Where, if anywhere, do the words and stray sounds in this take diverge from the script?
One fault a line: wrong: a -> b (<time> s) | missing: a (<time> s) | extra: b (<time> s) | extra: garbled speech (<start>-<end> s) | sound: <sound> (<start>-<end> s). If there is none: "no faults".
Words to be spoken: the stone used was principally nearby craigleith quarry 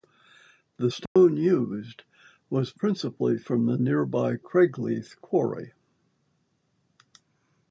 sound: dropout (1.1-1.2 s)
extra: from the (3.4 s)